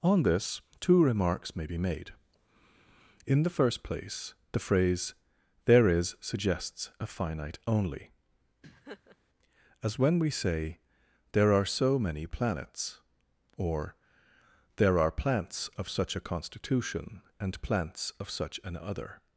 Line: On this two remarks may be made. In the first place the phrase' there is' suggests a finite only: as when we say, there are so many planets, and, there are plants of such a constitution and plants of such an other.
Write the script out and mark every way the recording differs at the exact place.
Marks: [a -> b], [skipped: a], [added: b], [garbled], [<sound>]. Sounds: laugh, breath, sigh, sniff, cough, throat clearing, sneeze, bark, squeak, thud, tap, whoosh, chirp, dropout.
On this two remarks may be made. In the first place the phrase' there is' suggests a finite only: [laugh] as when we say, there are so many planets, [and, -> or] there are plants of such a constitution and plants of such an other.